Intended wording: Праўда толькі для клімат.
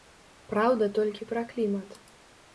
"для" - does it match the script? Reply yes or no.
no